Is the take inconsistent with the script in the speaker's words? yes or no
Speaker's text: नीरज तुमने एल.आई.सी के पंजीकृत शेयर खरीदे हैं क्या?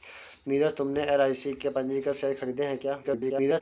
yes